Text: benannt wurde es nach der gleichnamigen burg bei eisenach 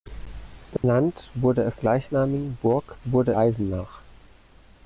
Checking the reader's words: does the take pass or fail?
fail